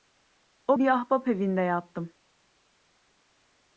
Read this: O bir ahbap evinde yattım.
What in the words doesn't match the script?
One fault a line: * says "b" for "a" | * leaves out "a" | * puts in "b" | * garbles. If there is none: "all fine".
all fine